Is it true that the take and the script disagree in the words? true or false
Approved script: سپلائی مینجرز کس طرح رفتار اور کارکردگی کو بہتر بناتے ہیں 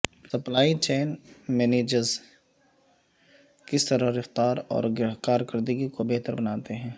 true